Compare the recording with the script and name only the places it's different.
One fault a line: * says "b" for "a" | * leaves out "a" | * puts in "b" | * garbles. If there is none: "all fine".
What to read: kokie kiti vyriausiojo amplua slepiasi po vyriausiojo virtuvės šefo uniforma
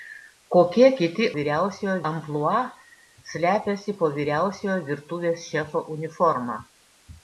all fine